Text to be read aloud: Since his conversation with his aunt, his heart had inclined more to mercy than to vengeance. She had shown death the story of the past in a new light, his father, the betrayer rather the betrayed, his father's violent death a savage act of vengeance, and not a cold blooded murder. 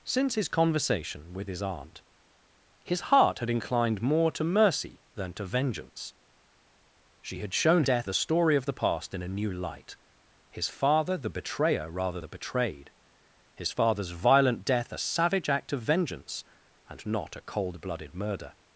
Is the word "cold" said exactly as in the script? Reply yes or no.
yes